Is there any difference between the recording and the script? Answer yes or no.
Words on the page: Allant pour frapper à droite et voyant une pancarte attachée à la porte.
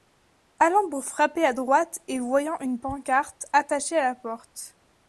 no